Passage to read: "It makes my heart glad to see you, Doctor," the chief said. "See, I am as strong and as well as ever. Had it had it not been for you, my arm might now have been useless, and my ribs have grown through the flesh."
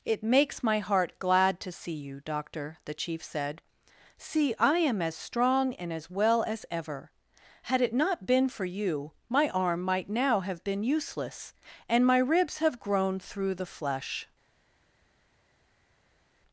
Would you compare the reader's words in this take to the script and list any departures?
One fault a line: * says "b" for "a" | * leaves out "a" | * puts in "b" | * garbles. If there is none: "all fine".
* leaves out "had it"